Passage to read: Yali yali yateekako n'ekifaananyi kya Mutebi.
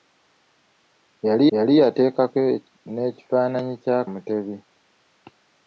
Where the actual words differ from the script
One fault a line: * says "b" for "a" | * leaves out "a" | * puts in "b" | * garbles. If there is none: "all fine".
all fine